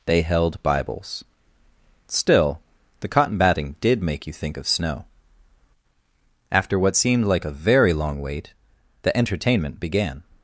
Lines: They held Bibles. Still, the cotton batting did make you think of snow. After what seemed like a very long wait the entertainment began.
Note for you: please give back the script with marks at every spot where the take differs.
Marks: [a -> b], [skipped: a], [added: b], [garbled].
They held Bibles. Still, the cotton batting did make you think of snow. After what seemed like a very long wait the entertainment began.